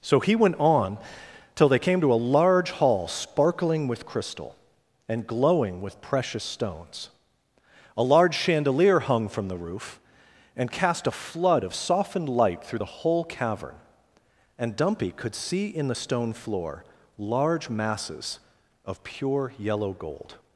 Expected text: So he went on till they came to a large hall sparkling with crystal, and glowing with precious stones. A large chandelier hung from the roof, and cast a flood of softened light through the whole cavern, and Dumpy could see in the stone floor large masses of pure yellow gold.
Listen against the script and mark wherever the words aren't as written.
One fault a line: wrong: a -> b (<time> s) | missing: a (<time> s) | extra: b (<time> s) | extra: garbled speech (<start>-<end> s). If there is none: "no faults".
no faults